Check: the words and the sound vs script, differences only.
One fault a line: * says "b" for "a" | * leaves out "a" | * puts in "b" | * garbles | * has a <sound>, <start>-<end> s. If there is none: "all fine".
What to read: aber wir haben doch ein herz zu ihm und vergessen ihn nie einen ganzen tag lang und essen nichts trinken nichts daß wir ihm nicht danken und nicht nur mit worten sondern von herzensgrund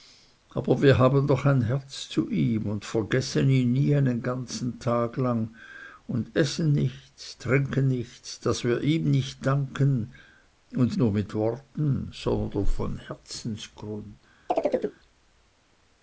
* leaves out "nicht"
* has a chirp, 14.5-15.0 s